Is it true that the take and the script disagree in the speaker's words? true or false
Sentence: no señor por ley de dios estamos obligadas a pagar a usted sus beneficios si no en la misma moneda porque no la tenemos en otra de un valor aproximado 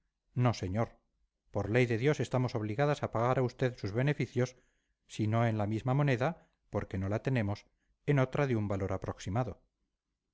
false